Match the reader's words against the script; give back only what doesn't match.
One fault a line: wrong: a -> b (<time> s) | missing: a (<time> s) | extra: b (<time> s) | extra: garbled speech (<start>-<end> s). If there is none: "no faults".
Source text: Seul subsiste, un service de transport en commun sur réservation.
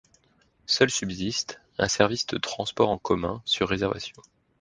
no faults